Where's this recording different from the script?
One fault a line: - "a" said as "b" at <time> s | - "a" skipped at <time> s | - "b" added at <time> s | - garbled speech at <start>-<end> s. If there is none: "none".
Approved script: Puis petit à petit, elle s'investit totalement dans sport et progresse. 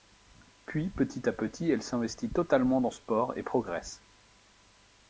none